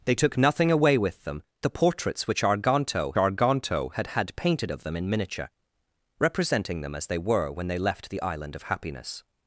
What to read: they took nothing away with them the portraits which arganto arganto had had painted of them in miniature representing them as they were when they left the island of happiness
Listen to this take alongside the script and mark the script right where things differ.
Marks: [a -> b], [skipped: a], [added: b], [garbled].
they took nothing away with them the portraits which arganto arganto had had painted of them in miniature representing them as they were when they left the island of happiness